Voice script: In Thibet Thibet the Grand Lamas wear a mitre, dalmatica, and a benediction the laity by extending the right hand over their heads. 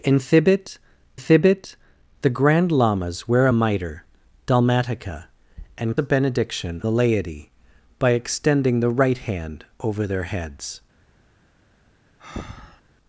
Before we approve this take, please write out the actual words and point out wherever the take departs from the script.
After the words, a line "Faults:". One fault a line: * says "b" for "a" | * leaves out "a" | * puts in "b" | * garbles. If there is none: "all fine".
In Thibet Thibet the Grand Lamas wear a mitre, dalmatica, and a benediction the laity by extending the right hand over their heads.
Faults:
all fine